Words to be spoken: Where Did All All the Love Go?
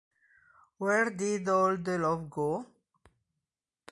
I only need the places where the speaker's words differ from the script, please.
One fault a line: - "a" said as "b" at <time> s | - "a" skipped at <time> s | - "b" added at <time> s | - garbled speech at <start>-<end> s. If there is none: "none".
- "All" skipped at 1.8 s